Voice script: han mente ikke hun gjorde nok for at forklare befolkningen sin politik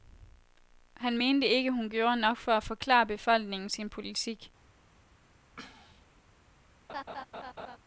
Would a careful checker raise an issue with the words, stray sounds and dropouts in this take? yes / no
yes